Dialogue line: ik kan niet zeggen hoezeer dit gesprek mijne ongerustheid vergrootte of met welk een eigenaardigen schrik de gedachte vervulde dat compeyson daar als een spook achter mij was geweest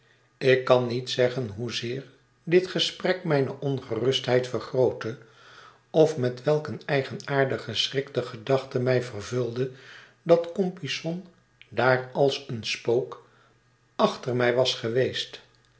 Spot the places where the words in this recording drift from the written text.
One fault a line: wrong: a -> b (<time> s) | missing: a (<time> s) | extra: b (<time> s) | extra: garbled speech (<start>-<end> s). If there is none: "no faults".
extra: mij (8.8 s)